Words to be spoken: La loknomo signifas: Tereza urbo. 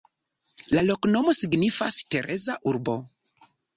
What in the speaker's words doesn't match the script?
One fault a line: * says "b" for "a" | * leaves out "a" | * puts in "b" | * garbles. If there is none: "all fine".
all fine